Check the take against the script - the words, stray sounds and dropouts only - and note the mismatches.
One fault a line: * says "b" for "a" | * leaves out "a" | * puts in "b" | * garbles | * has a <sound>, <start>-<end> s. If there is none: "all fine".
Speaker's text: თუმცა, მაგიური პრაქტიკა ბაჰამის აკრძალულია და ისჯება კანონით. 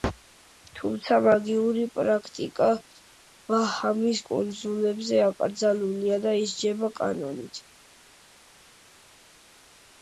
* puts in "კუნძულებზე"